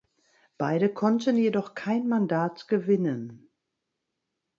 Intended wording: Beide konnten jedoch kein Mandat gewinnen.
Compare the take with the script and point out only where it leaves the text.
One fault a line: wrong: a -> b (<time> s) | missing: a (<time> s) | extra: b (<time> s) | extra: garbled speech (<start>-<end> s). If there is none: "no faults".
no faults